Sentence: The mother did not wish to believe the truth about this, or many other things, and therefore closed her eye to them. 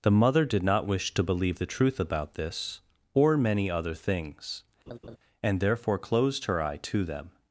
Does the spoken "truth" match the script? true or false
true